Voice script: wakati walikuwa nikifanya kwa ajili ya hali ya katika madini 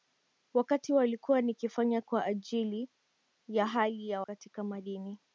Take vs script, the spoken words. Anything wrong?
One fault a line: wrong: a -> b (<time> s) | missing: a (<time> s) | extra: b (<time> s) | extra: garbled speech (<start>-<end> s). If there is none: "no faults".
no faults